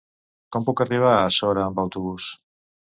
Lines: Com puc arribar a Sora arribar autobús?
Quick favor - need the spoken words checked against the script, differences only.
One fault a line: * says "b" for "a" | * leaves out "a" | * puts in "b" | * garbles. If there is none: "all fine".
* says "amb" for "arribar"